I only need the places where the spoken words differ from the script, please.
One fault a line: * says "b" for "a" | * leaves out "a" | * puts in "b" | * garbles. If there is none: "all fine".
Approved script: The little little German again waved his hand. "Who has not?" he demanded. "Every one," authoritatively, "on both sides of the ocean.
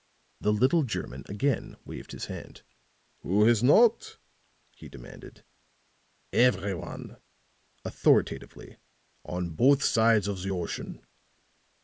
* leaves out "little"